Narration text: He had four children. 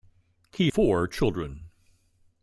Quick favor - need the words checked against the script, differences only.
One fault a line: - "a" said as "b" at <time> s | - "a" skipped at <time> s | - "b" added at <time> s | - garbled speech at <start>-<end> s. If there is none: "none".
- "had" skipped at 0.7 s